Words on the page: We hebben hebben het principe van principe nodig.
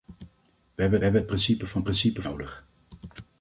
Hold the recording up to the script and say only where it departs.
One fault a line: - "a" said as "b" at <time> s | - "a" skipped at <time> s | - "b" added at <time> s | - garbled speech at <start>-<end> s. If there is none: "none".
none